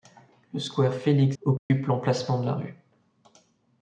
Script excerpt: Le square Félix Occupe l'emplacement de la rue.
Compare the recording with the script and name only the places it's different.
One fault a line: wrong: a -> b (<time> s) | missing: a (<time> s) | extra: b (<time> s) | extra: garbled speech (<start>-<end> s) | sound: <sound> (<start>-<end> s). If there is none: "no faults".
sound: dropout (1.6-1.7 s)